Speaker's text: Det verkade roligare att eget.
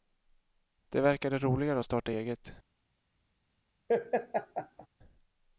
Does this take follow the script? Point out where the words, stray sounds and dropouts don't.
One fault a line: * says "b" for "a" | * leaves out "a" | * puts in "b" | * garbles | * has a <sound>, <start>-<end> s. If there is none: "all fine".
* puts in "starta"
* has a laugh, 3.9-4.9 s